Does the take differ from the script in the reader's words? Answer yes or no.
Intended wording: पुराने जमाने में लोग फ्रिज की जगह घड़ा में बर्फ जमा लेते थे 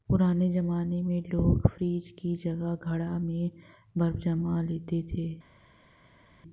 no